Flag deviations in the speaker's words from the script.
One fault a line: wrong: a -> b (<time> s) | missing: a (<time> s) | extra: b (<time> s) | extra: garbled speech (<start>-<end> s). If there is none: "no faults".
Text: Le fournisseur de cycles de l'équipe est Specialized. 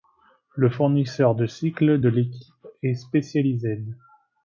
no faults